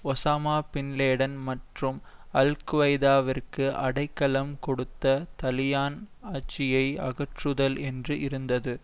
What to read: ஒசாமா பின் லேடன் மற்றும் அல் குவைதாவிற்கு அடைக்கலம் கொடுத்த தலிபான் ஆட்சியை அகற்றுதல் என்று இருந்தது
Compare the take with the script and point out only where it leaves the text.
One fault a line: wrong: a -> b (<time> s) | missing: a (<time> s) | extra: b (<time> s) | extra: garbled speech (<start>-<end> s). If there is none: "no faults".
no faults